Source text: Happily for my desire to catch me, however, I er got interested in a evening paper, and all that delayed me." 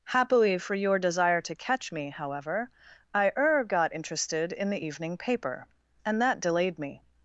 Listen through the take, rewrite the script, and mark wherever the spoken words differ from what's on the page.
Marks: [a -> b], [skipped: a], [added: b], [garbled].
Happily for [my -> your] desire to catch me, however, I er got interested in [a -> the] evening paper, and [skipped: all] that delayed me."